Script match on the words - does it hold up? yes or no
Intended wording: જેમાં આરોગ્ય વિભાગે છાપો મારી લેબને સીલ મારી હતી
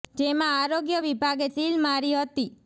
no